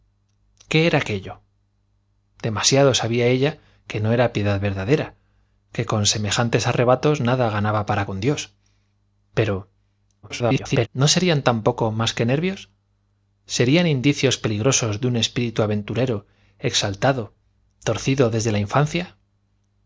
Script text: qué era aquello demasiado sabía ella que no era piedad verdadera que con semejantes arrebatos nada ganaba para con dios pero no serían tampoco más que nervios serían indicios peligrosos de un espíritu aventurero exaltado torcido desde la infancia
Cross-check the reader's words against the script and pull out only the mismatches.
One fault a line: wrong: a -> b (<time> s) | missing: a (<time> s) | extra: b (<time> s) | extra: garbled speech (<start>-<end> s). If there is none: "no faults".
extra: garbled speech (10.2-10.9 s)